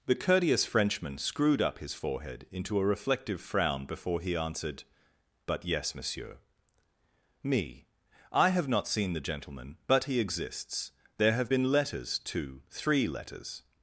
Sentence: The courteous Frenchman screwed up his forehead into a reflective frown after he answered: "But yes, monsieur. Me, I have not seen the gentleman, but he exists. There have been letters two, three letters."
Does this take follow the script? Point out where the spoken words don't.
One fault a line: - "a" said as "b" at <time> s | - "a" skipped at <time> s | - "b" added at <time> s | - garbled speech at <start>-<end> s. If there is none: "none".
- "after" said as "before" at 3.9 s